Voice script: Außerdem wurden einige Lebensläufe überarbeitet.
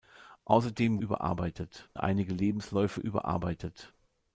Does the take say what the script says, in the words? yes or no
no